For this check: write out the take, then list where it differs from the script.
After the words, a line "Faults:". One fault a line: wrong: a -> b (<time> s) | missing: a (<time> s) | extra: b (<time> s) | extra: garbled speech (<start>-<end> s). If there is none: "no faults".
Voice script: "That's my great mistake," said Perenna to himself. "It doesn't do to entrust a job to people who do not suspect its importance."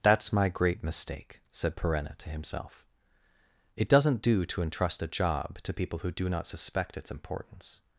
"That's my great mistake," said Perenna to himself. "It doesn't do to entrust a job to people who do not suspect its importance."
Faults:
no faults